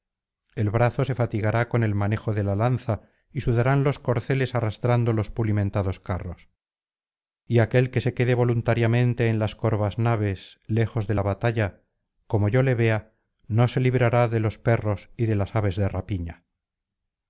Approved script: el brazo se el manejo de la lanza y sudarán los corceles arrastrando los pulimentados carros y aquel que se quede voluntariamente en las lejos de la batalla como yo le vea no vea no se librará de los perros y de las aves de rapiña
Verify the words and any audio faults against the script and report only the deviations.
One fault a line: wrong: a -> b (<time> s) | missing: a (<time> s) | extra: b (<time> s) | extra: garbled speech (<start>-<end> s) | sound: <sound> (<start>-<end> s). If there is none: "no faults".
extra: fatigará con (1.2 s)
extra: corvas naves (9.6 s)
missing: vea no (13.7 s)